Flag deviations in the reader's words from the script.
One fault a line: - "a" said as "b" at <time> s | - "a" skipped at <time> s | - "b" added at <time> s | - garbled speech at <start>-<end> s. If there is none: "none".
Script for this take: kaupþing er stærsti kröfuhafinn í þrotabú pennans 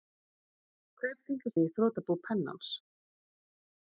- "stærsti kröfuhafinn" skipped at 1.5 s